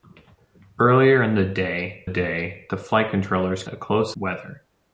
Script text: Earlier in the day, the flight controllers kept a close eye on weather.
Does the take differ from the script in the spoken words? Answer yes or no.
yes